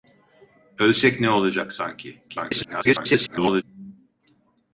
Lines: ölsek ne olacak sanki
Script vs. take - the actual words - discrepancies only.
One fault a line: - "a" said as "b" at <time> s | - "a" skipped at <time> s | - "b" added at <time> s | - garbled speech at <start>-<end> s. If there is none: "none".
- garbled speech at 2.3-3.6 s